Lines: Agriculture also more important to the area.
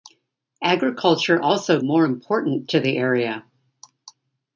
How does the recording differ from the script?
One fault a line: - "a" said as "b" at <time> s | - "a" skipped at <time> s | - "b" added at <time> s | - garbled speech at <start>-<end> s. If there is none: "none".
none